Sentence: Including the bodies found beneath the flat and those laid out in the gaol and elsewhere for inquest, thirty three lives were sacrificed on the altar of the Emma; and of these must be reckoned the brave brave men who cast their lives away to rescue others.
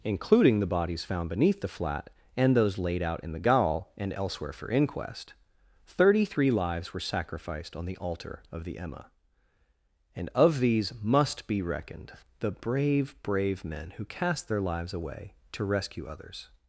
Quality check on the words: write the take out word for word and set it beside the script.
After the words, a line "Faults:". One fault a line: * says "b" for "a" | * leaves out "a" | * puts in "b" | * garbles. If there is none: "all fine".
Including the bodies found beneath the flat and those laid out in the gaol and elsewhere for inquest, thirty three lives were sacrificed on the altar of the Emma; and of these must be reckoned the brave brave men who cast their lives away to rescue others.
Faults:
all fine